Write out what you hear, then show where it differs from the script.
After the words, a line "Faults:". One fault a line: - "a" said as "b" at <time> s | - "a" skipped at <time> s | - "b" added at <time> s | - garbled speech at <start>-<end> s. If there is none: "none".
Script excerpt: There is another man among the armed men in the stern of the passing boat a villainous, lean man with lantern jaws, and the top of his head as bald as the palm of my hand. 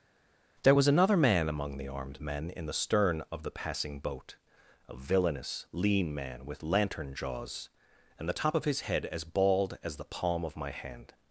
There was another man among the armed men in the stern of the passing boat a villainous, lean man with lantern jaws, and the top of his head as bald as the palm of my hand.
Faults:
- "is" said as "was" at 0.7 s